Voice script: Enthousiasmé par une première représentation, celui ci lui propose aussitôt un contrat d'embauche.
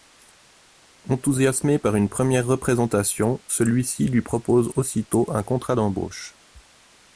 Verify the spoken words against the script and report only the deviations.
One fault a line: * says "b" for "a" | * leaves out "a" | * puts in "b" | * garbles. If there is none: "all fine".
all fine